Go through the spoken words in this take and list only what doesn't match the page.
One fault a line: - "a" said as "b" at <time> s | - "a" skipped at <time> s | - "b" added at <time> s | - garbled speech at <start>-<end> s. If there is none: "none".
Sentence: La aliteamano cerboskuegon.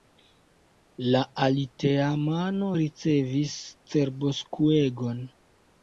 - "ricevis" added at 2.8 s